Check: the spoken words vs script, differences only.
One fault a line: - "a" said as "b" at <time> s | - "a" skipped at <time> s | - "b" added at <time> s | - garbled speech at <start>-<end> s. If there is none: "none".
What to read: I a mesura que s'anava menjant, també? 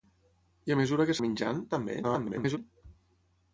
- "s'anava" skipped at 1.1 s
- garbled speech at 2.0-2.6 s